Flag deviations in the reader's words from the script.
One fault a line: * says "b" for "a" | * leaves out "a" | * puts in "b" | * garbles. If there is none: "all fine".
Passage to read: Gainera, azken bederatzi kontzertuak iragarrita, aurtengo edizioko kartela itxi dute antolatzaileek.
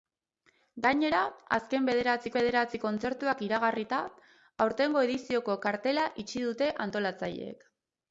* puts in "bederatzi"